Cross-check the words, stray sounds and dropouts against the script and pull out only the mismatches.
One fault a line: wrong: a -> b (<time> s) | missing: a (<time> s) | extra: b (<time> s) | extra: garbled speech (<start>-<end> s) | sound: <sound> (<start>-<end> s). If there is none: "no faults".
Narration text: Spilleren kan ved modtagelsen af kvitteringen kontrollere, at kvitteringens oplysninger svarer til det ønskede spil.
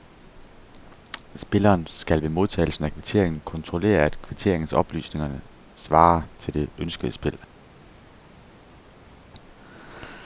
wrong: kan -> skal (1.9 s)